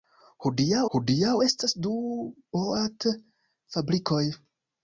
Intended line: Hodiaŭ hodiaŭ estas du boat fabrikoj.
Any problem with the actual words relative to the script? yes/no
no